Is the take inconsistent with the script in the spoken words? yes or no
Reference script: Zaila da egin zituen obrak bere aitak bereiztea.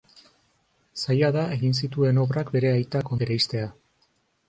no